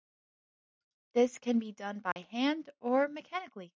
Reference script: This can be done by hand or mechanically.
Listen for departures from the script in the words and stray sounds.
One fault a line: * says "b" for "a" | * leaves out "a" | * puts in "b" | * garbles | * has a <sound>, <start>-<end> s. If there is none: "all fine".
* has a dropout, 2.1-2.2 s